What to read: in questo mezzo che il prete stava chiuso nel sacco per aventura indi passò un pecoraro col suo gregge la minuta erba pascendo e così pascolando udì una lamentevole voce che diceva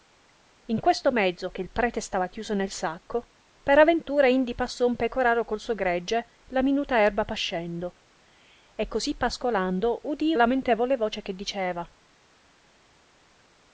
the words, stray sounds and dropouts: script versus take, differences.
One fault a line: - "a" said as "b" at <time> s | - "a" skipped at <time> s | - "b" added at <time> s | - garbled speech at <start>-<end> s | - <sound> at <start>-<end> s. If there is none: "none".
- "una" skipped at 10.3 s